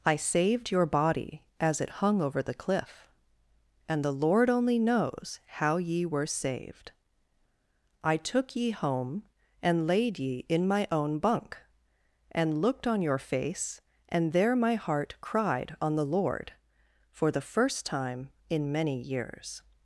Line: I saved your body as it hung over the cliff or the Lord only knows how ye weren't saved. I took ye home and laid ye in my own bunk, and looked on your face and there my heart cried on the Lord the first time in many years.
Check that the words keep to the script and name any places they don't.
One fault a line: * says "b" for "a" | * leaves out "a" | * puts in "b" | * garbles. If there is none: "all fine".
* says "and" for "or"
* says "were" for "weren't"
* puts in "for"